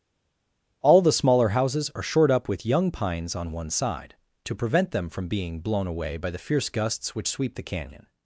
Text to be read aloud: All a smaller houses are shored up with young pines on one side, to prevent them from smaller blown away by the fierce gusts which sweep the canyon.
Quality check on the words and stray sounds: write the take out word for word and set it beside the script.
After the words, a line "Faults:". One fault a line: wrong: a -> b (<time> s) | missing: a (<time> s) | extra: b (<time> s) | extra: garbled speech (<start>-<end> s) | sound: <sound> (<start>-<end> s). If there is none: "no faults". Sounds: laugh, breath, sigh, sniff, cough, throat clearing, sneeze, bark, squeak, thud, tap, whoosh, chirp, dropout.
All the smaller houses are shored up with young pines on one side, to prevent them from being blown away by the fierce gusts which sweep the canyon.
Faults:
wrong: a -> the (1.0 s)
wrong: smaller -> being (5.3 s)